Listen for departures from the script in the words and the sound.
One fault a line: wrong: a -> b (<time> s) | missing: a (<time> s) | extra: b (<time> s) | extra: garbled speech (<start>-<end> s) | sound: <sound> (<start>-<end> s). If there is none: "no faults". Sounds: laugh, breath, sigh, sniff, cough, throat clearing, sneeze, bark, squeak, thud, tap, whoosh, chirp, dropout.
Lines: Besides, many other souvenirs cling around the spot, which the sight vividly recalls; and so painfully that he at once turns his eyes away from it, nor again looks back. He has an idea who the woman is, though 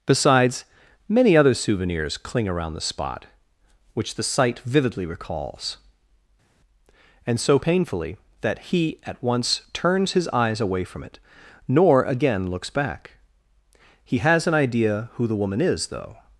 no faults